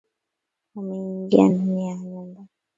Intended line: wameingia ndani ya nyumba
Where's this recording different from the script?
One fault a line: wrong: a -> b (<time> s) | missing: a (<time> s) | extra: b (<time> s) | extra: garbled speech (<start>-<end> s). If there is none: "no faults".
no faults